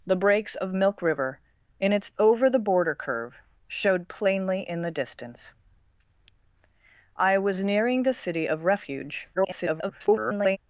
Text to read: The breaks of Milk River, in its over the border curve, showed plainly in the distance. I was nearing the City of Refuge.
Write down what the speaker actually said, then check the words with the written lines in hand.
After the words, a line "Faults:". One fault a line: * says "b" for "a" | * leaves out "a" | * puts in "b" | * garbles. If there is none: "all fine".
The breaks of Milk River, in its over the border curve, showed plainly in the distance. I was nearing the City of Refuge. [garbled]
Faults:
* garbles